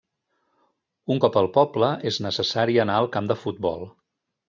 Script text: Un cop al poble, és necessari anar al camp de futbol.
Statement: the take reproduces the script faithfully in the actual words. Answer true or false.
true